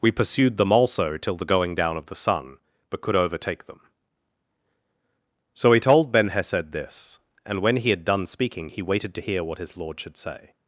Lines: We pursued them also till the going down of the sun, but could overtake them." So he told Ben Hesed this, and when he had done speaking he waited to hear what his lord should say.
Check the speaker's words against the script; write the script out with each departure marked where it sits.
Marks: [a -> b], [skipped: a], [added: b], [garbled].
We pursued them also till the going down of the sun, but could overtake them." So he told Ben Hesed this, and when he had done speaking he waited to hear what his lord should say.